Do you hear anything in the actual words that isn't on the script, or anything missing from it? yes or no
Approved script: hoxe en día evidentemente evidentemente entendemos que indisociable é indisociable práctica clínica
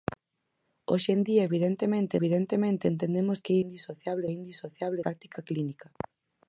no